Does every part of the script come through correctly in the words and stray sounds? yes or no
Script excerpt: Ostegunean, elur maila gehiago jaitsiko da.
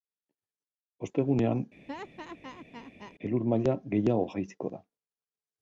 no